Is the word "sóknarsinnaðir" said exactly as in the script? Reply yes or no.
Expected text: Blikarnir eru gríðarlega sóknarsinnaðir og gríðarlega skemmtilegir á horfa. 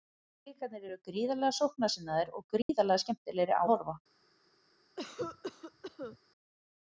yes